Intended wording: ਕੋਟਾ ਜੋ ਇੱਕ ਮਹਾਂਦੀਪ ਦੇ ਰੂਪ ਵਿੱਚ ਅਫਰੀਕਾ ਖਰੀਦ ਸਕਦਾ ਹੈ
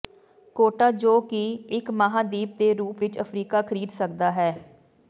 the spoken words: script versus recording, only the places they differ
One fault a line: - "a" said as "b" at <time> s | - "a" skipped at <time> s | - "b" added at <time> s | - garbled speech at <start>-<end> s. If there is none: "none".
- "ਕਿ" added at 1.2 s